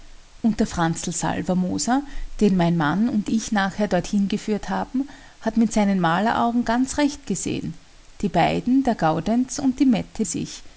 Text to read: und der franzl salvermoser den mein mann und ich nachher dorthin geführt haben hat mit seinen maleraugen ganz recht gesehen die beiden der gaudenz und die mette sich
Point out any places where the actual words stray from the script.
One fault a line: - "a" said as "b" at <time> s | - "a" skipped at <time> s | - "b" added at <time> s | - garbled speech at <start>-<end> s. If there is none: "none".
none